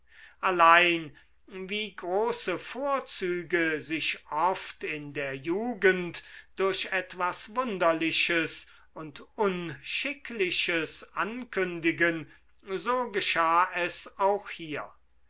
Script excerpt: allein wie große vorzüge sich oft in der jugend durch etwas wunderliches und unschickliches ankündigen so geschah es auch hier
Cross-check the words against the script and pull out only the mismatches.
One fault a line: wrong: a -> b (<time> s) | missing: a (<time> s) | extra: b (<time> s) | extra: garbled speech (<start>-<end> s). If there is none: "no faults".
no faults